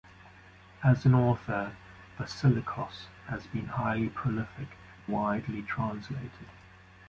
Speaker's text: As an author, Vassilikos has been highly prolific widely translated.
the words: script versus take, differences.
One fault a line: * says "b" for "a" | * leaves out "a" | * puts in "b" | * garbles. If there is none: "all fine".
all fine